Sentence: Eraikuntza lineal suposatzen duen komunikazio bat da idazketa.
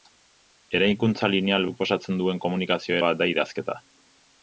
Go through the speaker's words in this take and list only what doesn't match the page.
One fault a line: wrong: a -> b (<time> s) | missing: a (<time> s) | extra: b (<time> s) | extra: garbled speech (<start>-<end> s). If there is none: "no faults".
no faults